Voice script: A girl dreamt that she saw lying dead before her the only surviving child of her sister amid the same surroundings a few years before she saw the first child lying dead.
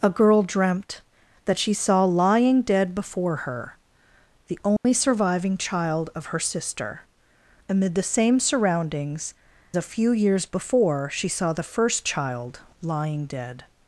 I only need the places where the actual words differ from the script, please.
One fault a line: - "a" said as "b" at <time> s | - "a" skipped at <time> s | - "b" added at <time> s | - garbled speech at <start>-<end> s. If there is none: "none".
none